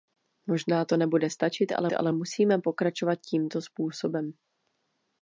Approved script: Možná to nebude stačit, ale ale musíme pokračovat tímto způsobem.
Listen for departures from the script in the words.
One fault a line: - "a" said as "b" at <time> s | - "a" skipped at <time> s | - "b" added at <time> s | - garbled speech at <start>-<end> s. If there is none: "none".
none